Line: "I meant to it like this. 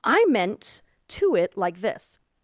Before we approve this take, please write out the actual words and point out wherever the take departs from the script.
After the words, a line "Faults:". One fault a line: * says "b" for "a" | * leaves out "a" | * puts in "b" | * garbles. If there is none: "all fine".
"I meant to it like this.
Faults:
all fine